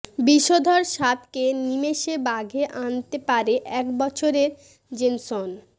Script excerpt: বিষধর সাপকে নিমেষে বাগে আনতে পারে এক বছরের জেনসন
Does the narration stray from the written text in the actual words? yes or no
no